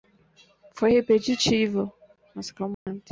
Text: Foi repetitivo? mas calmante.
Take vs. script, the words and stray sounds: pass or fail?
fail